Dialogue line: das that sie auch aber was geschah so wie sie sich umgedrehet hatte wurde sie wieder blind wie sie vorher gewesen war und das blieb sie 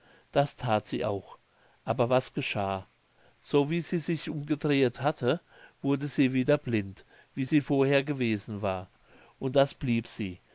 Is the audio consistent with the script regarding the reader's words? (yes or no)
yes